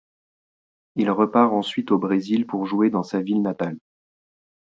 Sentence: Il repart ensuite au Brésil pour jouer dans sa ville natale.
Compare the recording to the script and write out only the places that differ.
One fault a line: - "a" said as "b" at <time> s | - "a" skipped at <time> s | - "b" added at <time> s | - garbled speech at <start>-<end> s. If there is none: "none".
none